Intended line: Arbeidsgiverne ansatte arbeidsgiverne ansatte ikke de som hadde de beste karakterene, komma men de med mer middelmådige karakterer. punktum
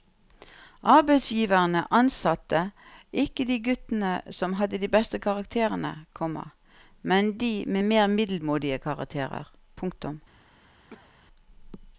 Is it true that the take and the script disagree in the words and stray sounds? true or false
true